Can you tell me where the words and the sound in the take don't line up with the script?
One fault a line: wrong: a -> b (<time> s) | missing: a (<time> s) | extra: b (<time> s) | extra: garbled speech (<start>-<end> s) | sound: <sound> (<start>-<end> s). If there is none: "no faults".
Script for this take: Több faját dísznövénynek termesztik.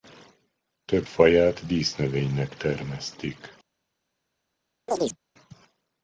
sound: chirp (4.9-5.2 s)